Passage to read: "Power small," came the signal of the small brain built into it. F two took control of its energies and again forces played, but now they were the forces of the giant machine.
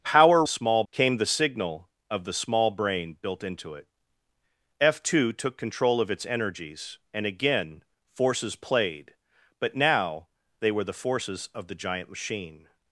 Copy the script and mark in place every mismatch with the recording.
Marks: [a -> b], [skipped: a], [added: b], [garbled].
"Power small," came the signal of the small brain built into it. F two took control of its energies and again forces played, but now they were the forces of the giant machine.